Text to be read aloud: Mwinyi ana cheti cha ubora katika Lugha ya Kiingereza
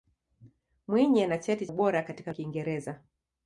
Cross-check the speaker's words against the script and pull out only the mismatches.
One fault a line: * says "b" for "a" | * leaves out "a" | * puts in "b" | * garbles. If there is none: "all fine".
* leaves out "cha"
* leaves out "Lugha ya"